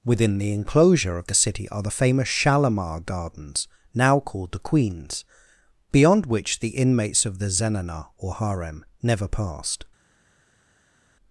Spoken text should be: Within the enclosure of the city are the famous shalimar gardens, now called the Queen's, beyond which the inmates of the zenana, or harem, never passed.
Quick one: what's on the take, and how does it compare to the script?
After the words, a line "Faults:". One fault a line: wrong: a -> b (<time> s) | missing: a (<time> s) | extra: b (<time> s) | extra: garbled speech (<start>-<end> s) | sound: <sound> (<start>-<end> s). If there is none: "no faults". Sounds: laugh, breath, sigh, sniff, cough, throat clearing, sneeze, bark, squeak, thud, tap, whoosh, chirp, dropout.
Within the enclosure of the city are the famous shalimar gardens, now called the Queen's, beyond which the inmates of the zenana, or harem, never passed.
Faults:
no faults